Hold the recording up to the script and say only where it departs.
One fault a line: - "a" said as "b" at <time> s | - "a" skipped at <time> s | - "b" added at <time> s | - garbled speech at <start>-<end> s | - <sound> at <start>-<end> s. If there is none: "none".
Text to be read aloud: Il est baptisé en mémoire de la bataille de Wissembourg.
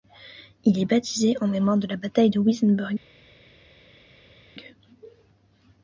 none